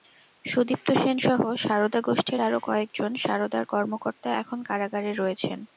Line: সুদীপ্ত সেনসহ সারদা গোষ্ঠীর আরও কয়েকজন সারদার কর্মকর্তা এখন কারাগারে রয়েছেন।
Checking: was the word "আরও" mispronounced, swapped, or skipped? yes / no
no